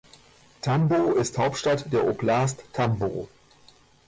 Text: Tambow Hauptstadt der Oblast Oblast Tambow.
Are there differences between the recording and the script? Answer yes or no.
yes